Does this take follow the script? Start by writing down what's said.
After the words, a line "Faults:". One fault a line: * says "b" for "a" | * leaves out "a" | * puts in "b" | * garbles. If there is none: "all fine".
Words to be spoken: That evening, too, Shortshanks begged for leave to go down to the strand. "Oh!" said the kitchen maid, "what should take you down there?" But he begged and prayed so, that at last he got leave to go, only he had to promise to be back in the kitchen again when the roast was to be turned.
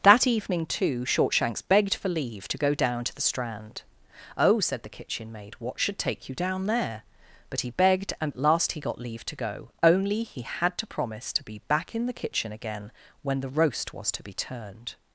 That evening, too, Shortshanks begged for leave to go down to the strand. "Oh!" said the kitchen maid, "what should take you down there?" But he begged and at last he got leave to go, only he had to promise to be back in the kitchen again when the roast was to be turned.
Faults:
* leaves out "prayed so that"